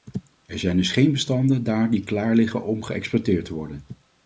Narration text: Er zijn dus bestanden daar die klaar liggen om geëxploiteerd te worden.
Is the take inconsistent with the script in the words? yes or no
yes